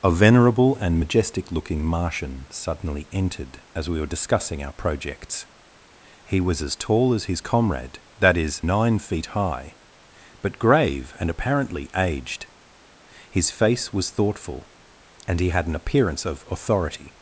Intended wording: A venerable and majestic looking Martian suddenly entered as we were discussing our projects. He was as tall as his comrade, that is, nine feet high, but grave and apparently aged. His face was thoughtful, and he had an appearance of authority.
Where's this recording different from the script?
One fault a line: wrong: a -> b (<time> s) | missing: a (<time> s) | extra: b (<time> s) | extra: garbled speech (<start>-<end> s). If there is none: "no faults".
no faults